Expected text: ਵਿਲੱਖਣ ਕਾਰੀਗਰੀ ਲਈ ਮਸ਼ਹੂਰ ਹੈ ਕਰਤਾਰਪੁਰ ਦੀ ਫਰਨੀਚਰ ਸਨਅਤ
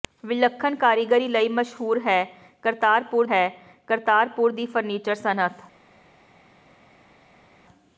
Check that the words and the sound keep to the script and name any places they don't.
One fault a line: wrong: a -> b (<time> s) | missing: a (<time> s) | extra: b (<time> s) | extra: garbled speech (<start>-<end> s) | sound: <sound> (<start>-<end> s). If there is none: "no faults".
extra: ਹੈ ਕਰਤਾਰਪੁਰ (3.3 s)